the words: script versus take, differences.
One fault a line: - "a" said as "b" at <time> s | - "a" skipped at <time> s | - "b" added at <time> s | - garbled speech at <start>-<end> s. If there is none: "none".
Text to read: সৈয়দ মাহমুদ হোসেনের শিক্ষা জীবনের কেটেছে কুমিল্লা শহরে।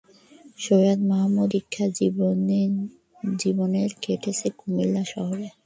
- "হোসেনের" skipped at 1.5 s